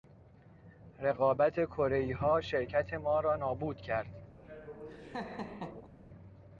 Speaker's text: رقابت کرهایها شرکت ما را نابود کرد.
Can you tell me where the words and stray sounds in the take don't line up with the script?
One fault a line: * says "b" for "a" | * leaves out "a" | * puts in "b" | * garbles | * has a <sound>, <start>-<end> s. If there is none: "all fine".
* has a laugh, 4.4-5.9 s